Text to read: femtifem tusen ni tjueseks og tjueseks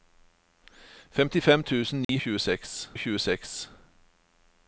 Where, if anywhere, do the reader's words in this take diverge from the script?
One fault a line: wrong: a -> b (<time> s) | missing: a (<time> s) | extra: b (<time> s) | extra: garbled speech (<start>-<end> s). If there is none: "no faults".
no faults